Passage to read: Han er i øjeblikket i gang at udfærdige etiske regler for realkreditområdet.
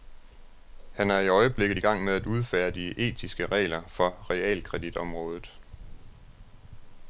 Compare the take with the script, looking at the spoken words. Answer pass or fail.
fail